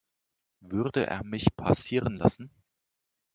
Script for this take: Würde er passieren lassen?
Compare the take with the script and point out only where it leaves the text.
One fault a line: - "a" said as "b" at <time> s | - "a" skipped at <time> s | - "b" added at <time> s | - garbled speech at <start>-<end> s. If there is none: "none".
- "mich" added at 1.2 s